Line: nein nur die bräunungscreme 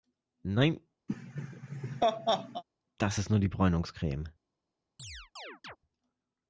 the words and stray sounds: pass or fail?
fail